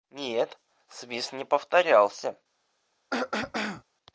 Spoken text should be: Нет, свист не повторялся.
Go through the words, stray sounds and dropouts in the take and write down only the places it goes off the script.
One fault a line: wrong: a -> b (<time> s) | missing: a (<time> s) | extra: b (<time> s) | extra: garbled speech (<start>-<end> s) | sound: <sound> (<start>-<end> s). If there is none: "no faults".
sound: throat clearing (3.1-3.8 s)